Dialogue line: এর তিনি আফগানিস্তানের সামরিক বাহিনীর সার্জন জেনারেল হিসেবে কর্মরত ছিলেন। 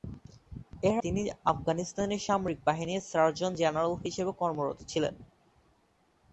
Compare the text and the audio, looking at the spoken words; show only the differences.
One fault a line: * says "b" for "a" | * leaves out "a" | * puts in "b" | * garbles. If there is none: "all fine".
all fine